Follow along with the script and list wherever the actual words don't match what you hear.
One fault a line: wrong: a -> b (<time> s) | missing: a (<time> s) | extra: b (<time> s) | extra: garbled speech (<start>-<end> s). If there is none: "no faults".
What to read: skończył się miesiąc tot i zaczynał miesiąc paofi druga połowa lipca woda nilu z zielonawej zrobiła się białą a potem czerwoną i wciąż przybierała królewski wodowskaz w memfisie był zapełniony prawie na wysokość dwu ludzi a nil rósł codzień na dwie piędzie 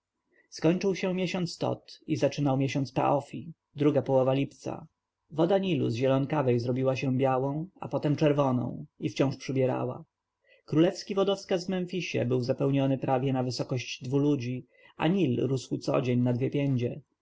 no faults